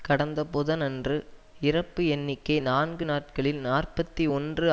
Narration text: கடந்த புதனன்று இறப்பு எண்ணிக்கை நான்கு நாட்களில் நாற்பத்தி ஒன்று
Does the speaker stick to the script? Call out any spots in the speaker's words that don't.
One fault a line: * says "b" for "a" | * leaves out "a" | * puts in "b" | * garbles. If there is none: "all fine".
all fine